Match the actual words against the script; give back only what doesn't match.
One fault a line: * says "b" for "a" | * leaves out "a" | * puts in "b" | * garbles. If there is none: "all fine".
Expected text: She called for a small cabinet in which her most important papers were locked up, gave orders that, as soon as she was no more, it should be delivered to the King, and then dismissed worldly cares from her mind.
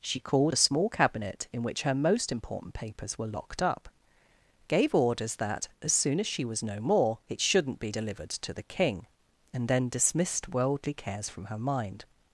* leaves out "for"
* says "shouldn't" for "should"